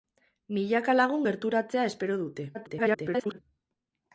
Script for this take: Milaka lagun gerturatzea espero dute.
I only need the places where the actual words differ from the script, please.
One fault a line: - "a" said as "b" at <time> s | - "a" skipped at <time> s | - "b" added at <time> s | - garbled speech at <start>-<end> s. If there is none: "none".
- garbled speech at 2.5-3.4 s